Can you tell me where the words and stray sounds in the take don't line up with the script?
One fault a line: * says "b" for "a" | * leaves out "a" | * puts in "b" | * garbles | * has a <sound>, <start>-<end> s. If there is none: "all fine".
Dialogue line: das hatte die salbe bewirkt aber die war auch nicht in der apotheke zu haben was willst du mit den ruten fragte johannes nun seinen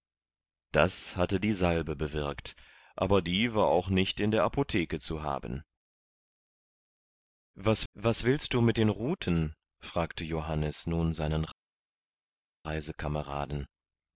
* puts in "was"